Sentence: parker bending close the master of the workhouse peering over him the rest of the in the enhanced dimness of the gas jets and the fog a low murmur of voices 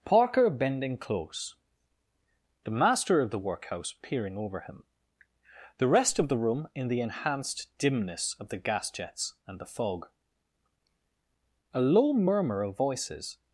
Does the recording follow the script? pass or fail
fail